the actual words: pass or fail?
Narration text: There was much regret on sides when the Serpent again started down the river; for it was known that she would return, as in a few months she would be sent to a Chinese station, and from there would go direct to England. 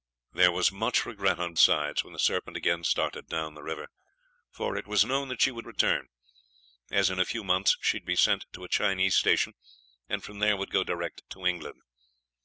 pass